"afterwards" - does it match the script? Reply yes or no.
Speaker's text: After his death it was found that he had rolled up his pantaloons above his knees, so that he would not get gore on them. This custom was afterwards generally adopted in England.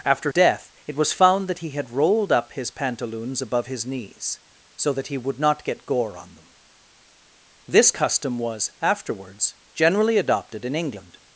yes